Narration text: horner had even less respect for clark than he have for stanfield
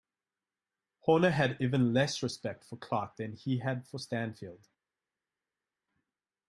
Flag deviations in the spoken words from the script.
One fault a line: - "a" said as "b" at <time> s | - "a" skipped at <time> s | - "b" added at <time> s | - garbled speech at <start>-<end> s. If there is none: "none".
- "have" said as "had" at 3.6 s